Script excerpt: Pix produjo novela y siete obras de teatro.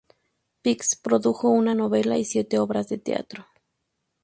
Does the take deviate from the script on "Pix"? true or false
false